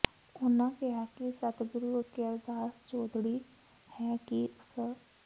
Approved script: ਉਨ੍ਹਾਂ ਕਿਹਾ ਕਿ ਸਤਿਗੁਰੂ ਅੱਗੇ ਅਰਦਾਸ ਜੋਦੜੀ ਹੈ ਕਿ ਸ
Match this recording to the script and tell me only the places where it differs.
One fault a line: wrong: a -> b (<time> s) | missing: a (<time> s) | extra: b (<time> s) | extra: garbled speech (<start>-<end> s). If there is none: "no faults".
no faults